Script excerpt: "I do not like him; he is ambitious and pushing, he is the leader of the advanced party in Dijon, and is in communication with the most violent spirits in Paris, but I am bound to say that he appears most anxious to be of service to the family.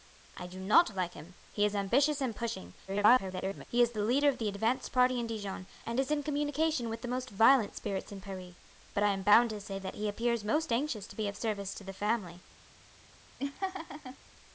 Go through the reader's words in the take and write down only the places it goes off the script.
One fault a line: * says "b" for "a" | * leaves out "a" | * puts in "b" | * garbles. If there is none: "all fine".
* garbles